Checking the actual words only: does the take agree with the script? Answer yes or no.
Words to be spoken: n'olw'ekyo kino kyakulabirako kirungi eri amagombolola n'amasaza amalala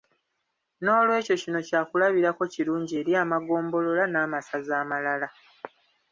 yes